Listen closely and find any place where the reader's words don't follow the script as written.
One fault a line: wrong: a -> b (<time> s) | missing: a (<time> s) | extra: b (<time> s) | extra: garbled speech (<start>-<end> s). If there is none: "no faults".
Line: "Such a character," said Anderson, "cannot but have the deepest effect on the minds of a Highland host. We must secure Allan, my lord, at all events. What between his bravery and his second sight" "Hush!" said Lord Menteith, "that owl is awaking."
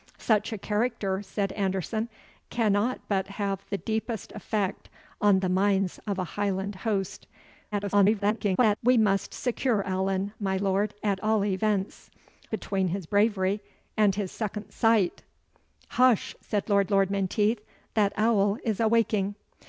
extra: garbled speech (7.7-8.8 s)
missing: What (12.1 s)
extra: Lord (16.9 s)